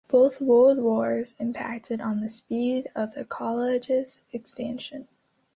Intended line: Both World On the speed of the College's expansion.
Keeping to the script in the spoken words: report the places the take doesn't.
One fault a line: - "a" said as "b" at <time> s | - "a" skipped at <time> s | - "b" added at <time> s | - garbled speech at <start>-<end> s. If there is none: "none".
- "Wars impacted" added at 0.8 s